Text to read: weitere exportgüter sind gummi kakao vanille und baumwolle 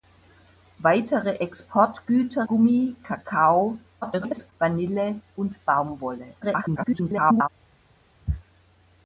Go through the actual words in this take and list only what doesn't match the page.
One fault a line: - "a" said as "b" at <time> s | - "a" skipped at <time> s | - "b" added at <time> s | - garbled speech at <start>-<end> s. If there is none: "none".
- "sind" skipped at 2.5 s
- garbled speech at 4.0-4.5 s
- garbled speech at 6.4-7.5 s